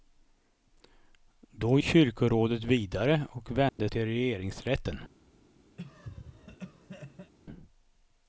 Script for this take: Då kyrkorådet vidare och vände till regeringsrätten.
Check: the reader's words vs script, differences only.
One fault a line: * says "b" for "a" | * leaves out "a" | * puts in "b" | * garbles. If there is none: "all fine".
all fine